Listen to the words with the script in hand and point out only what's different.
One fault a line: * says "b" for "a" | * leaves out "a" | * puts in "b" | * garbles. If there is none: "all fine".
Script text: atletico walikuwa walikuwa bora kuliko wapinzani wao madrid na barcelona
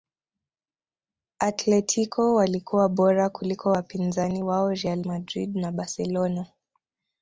* leaves out "walikuwa"
* puts in "real"